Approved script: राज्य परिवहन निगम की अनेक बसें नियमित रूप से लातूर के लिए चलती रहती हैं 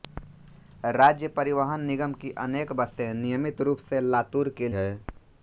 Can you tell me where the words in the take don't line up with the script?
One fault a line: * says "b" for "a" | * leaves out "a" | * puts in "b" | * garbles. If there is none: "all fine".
* leaves out "लिए चलती रहती"